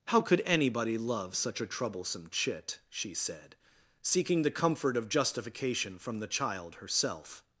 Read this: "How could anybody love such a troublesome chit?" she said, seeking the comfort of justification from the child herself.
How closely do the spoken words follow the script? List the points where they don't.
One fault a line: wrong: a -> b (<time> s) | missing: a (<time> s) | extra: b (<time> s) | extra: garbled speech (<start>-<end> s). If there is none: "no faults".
no faults